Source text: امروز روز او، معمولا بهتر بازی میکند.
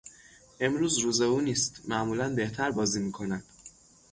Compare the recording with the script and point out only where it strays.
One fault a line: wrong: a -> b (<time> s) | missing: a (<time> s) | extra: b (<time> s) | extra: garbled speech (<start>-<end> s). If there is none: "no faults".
extra: نیست (1.4 s)